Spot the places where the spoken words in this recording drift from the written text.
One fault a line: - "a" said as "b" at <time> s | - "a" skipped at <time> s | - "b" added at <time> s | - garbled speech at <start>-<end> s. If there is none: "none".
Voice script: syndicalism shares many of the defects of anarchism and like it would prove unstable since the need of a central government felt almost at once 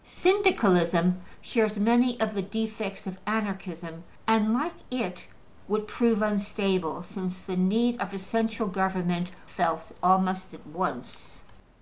none